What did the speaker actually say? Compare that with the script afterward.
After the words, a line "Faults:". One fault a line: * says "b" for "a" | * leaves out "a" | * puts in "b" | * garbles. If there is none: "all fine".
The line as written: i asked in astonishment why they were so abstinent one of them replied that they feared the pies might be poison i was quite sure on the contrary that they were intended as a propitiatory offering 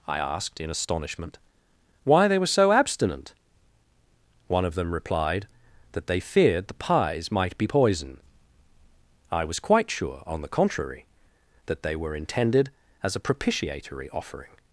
i asked in astonishment why they were so abstinent one of them replied that they feared the pies might be poison i was quite sure on the contrary that they were intended as a propitiatory offering
Faults:
all fine